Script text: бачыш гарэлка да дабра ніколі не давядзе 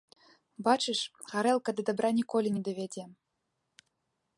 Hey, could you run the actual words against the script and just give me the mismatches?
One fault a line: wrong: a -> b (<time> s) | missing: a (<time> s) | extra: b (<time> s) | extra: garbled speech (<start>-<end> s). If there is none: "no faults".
no faults